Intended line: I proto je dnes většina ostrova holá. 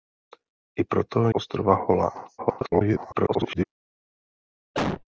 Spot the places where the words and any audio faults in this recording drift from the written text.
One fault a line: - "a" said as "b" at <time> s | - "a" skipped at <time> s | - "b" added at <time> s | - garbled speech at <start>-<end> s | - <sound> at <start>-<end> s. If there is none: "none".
- "je dnes většina" skipped at 1.3 s
- garbled speech at 2.4-3.7 s
- cough at 4.7-5.0 s